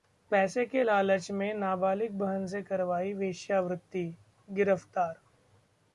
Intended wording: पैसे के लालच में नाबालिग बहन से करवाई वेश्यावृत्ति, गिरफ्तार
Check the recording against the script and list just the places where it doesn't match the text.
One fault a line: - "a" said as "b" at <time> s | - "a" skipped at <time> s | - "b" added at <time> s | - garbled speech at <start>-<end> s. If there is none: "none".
none